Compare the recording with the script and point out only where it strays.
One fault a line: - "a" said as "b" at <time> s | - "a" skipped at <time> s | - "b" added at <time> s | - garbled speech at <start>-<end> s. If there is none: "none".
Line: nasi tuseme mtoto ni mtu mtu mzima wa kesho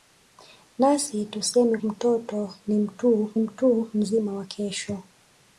none